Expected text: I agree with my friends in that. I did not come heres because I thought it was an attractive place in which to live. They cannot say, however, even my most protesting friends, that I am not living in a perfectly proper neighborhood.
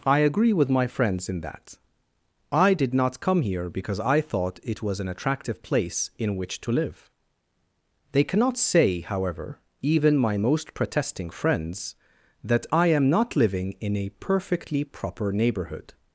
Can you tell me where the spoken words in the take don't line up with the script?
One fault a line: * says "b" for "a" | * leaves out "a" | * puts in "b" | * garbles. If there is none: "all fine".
* says "here" for "heres"